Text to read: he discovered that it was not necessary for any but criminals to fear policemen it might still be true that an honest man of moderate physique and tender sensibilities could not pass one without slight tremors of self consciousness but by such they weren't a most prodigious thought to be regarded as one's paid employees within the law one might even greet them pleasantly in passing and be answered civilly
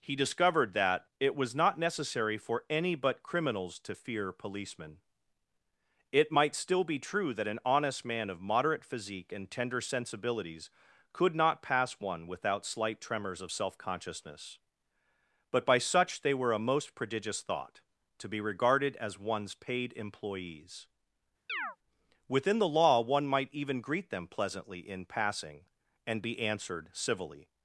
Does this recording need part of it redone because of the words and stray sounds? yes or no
yes